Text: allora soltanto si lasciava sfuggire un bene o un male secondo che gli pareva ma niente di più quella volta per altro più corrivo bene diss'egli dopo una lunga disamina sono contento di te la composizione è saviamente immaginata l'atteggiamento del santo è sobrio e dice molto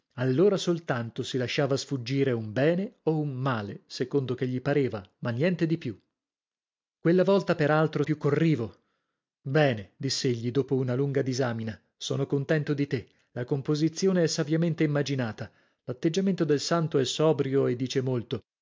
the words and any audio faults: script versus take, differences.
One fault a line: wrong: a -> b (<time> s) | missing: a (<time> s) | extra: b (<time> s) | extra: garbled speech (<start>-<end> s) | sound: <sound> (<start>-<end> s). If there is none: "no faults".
no faults